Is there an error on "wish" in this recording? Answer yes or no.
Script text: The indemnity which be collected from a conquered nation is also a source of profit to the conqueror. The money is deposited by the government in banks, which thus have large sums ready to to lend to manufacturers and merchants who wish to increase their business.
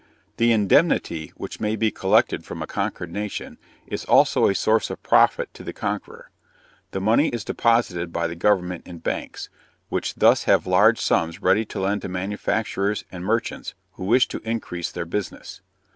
no